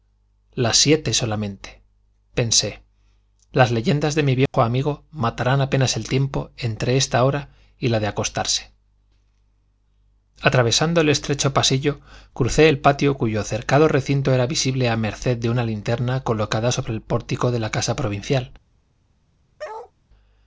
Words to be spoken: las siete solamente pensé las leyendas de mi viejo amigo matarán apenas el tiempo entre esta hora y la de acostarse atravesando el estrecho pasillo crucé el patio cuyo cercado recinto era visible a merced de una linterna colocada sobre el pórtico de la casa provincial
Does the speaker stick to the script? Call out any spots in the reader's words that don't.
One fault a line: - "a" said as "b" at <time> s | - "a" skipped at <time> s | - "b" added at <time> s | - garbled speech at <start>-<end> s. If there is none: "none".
none